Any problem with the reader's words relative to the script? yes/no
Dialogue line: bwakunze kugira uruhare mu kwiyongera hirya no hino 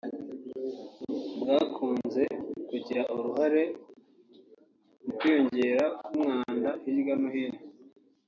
yes